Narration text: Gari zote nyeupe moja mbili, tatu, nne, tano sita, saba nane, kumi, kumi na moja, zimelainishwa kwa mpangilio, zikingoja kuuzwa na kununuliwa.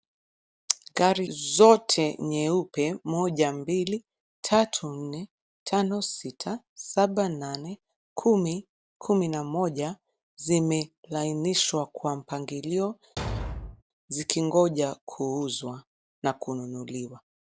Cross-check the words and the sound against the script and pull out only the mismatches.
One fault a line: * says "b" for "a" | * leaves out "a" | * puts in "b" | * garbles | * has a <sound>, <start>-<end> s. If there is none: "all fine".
* has a thud, 13.2-13.8 s